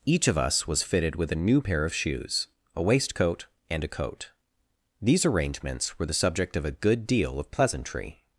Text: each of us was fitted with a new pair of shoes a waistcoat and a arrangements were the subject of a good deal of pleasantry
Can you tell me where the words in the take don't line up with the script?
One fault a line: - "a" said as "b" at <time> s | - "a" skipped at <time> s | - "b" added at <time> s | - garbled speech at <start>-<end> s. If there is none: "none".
- "coat these" added at 3.9 s